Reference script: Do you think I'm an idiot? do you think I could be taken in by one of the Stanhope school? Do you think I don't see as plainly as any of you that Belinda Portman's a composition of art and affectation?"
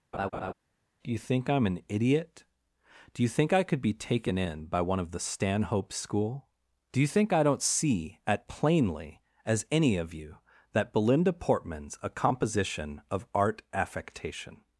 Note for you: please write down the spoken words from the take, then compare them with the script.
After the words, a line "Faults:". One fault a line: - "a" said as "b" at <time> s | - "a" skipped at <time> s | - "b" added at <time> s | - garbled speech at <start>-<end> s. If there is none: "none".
Do you think I'm an idiot? do you think I could be taken in by one of the Stanhope school? Do you think I don't see at plainly as any of you that Belinda Portman's a composition of art affectation?"
Faults:
- "as" said as "at" at 8.2 s
- "and" skipped at 13.6 s